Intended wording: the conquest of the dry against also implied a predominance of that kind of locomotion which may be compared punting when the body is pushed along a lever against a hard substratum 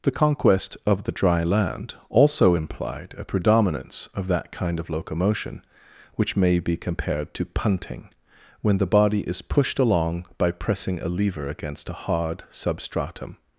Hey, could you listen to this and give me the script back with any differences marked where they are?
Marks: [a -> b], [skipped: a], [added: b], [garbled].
the conquest of the dry [against -> land] also implied a predominance of that kind of locomotion which may be compared [added: to] punting when the body is pushed along [added: by pressing] a lever against a hard substratum